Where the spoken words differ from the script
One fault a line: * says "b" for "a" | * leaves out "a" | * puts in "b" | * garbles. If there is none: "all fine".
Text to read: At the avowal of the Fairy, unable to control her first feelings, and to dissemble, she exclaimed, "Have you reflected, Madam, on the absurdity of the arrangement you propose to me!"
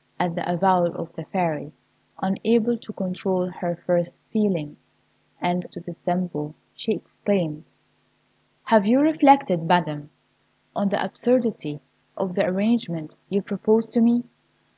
all fine